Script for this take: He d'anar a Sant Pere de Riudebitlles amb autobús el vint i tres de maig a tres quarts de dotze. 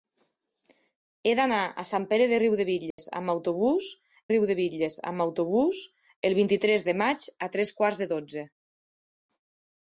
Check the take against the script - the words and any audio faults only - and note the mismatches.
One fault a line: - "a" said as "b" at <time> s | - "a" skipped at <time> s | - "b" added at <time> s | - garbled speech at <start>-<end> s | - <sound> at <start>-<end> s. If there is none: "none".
- dropout at 2.9-3.0 s
- "Riudebitlles amb autobús" added at 4.3 s